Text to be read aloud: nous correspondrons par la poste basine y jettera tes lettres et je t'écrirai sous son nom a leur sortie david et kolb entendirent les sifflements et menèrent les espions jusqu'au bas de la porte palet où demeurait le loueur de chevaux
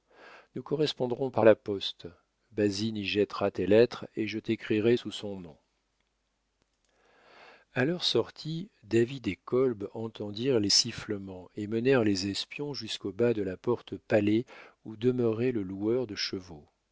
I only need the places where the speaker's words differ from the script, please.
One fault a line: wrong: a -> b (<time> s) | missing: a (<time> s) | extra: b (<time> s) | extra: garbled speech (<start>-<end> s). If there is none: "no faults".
no faults